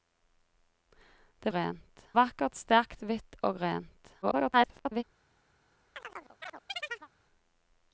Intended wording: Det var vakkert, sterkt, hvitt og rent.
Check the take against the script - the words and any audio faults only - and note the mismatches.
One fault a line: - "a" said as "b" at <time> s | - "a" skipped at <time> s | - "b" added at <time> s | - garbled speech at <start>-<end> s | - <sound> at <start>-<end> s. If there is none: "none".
- "var" said as "rent" at 1.6 s
- garbled speech at 4.2-5.0 s
- chirp at 5.9-7.1 s